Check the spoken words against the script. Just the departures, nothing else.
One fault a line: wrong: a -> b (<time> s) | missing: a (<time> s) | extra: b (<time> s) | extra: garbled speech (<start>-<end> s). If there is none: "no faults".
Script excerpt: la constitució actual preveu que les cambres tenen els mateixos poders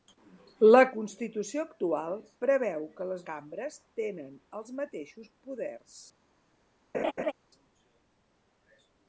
no faults